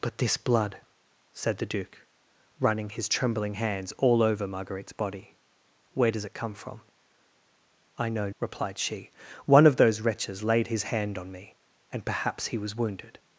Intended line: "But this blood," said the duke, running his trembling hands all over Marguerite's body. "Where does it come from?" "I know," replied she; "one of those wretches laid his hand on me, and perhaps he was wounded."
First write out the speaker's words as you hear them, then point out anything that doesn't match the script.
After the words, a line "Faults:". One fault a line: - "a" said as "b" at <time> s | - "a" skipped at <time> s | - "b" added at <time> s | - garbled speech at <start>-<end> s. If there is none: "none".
"But this blood," said the duke, running his trembling hands all over Marguerite's body. "Where does it come from?" "I know," replied she; "one of those wretches laid his hand on me, and perhaps he was wounded."
Faults:
none